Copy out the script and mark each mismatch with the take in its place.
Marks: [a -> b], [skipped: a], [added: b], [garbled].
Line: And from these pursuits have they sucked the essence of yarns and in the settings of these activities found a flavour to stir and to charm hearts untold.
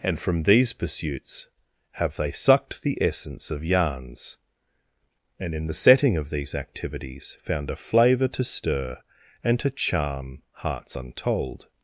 And from these pursuits have they sucked the essence of yarns and in the [settings -> setting] of these activities found a flavour to stir and to charm hearts untold.